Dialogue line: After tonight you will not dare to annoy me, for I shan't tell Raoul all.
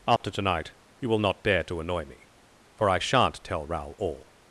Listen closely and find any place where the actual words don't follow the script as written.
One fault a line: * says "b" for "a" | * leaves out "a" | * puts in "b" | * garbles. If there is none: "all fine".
all fine